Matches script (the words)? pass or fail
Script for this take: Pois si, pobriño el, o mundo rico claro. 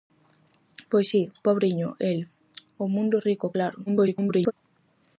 fail